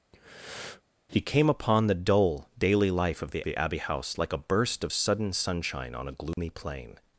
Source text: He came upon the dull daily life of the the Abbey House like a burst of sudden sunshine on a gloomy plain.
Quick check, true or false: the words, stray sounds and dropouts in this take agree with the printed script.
false